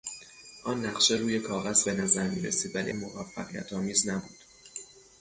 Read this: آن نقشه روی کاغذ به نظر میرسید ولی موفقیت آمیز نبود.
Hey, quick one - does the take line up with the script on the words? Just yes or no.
yes